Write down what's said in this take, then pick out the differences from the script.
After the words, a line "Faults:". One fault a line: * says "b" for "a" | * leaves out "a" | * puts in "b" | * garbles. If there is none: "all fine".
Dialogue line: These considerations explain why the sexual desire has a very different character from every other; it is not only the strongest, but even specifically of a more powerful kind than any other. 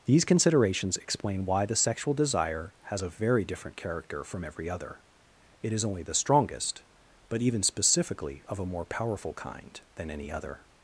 These considerations explain why the sexual desire has a very different character from every other; it is only the strongest, but even specifically of a more powerful kind than any other.
Faults:
* leaves out "not"